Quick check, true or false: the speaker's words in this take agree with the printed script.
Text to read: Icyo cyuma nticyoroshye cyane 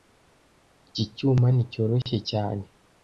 false